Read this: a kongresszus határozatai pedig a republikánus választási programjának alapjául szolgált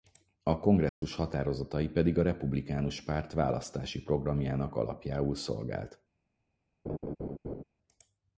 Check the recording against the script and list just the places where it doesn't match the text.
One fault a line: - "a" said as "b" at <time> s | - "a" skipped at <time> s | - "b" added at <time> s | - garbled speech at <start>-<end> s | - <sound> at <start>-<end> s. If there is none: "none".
- dropout at 0.9-1.0 s
- "párt" added at 3.0 s
- laugh at 6.8-7.6 s